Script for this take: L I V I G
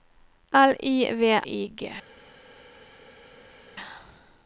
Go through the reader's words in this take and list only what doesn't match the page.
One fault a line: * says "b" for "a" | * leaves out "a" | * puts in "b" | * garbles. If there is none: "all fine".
all fine